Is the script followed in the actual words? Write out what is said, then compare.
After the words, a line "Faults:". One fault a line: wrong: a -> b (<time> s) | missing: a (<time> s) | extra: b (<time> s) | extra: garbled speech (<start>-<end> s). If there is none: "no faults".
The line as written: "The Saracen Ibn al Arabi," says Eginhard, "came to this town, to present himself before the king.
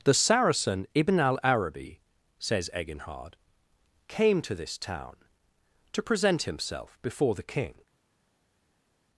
"The Saracen Ibn al Arabi," says Eginhard, "came to this town, to present himself before the king.
Faults:
no faults